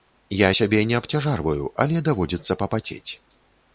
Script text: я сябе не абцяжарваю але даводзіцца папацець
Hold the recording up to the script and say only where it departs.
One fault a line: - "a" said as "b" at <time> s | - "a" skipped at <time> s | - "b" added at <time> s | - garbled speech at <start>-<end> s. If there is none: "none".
none